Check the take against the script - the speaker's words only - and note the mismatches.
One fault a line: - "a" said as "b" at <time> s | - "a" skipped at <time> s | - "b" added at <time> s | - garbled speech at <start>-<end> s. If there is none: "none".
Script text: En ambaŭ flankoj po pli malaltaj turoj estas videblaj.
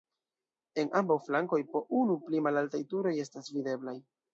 - "unu" added at 2.0 s